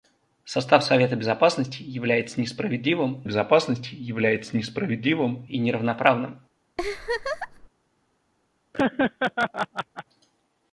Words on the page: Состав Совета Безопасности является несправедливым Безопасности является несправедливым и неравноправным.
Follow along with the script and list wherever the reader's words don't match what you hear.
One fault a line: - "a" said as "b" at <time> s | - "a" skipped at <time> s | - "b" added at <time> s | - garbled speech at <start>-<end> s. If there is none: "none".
none